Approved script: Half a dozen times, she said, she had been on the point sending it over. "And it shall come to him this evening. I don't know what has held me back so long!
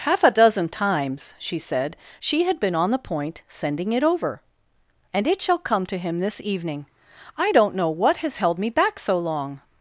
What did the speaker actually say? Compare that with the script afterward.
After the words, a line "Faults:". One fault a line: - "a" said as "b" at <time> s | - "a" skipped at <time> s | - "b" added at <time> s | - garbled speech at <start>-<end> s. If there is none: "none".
Half a dozen times, she said, she had been on the point sending it over. "And it shall come to him this evening. I don't know what has held me back so long!
Faults:
none